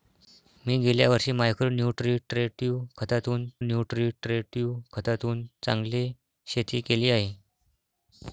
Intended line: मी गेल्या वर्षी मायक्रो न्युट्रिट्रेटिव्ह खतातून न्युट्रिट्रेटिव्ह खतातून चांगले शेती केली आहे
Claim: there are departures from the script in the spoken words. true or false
false